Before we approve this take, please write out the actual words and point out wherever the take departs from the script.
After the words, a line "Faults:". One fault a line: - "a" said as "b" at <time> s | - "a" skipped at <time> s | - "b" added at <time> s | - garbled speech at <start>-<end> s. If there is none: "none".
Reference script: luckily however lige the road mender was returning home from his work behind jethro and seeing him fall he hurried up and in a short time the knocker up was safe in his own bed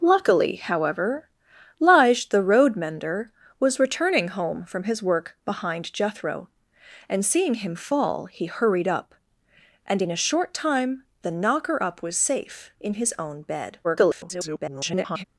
luckily however lige the road mender was returning home from his work behind jethro and seeing him fall he hurried up and in a short time the knocker up was safe in his own bed [garbled]
Faults:
- garbled speech at 13.8-15.2 s